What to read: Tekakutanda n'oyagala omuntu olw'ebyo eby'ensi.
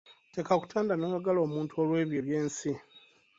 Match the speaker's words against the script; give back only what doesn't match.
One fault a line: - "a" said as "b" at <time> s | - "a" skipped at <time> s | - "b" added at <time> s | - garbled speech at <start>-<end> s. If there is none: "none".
none